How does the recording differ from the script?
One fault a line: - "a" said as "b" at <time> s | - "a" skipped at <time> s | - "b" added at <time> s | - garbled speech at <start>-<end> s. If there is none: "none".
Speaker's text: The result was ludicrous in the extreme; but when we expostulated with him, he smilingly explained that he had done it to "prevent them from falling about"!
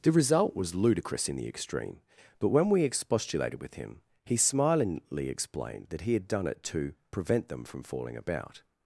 none